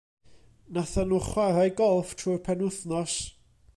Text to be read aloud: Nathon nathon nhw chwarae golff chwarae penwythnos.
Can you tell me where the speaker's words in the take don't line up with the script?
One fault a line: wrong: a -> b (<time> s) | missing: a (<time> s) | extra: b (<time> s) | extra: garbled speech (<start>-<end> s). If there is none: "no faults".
missing: nathon (1.1 s)
wrong: chwarae -> trwy'r (2.2 s)